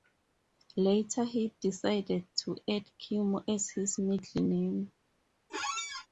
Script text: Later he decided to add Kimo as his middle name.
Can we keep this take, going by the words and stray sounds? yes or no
no